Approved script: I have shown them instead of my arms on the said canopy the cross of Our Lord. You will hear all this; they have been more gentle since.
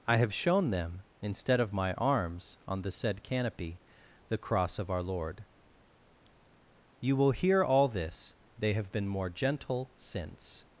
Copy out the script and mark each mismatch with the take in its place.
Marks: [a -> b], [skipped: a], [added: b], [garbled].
I have shown them instead of my arms on the said canopy the cross of Our Lord. You will hear all this; they have been more gentle since.